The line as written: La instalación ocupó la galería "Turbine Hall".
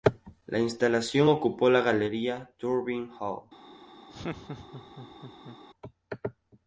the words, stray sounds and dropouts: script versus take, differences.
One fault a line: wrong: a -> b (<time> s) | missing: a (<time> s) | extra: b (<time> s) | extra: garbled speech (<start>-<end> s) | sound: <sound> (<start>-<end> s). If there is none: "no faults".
sound: laugh (4.1-5.6 s)